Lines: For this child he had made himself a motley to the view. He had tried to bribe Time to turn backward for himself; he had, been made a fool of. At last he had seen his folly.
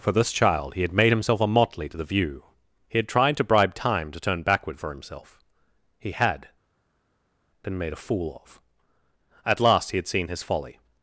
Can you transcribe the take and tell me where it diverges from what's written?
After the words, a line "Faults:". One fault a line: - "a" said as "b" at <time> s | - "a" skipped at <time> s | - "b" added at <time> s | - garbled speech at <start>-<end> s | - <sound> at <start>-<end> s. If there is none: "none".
For this child he had made himself a motley to the view. He had tried to bribe Time to turn backward for himself; he had, been made a fool of. At last he had seen his folly.
Faults:
none